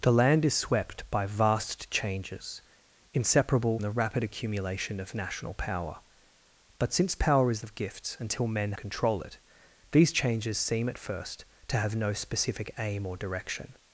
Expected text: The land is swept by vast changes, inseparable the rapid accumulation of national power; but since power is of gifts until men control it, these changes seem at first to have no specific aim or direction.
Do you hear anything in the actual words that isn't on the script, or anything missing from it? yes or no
no